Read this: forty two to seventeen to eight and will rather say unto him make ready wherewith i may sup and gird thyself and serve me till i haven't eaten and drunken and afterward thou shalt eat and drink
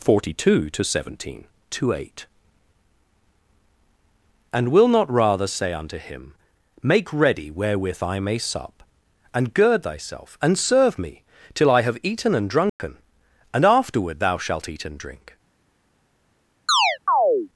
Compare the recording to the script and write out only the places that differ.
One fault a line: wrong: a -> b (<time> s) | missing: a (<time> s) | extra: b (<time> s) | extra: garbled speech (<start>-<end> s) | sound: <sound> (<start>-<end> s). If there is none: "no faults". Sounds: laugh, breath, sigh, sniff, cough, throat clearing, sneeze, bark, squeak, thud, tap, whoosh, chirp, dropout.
extra: not (4.9 s)
wrong: haven't -> have (11.8 s)
sound: dropout (12.7-12.8 s)
sound: chirp (16.7-17.5 s)